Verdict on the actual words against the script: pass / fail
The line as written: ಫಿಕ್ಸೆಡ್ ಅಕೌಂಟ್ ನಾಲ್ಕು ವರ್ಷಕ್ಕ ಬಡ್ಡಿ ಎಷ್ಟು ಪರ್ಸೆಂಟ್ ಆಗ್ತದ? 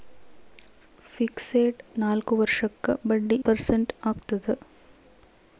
fail